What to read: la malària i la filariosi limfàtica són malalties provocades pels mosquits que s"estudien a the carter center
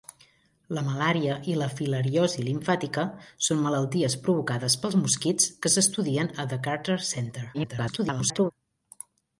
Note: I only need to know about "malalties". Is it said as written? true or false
true